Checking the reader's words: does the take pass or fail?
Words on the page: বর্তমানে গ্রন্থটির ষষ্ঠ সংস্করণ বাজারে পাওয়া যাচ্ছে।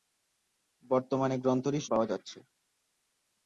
fail